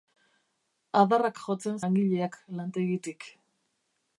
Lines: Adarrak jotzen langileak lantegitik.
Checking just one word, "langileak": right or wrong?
right